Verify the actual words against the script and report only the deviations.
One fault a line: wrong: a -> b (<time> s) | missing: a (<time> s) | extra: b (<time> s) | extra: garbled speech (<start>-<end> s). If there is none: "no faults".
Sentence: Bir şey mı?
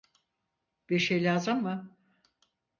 extra: lazım (1.2 s)